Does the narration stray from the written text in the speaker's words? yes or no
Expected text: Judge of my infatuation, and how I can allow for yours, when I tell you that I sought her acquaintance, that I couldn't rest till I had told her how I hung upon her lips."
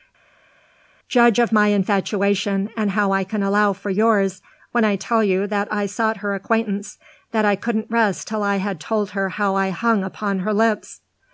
no